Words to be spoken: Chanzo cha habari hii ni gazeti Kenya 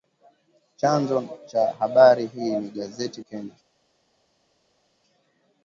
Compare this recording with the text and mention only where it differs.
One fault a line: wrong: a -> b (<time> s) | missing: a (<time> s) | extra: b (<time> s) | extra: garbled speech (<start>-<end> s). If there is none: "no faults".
no faults